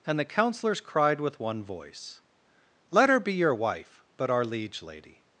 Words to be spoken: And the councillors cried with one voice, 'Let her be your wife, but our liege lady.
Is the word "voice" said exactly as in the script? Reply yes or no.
yes